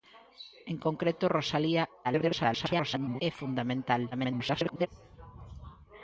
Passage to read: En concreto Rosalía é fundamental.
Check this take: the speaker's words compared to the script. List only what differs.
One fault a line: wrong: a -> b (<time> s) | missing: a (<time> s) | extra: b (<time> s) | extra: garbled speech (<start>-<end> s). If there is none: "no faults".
extra: garbled speech (2.0-3.2 s)
extra: garbled speech (4.1-4.9 s)